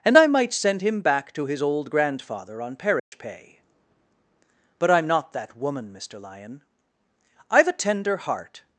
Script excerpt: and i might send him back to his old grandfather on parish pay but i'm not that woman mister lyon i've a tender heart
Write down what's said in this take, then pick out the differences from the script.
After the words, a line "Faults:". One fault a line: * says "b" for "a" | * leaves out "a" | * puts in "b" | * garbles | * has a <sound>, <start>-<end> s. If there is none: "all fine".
and i might send him back to his old grandfather on parish pay but i'm not that woman mister lyon i've a tender heart
Faults:
* has a dropout, 3.0-3.1 s